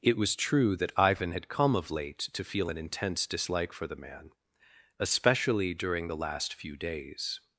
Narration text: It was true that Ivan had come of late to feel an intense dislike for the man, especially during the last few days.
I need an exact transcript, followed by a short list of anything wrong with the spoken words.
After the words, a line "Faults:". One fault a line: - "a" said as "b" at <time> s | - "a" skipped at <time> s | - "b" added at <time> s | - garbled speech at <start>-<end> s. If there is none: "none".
It was true that Ivan had come of late to feel an intense dislike for the man, especially during the last few days.
Faults:
none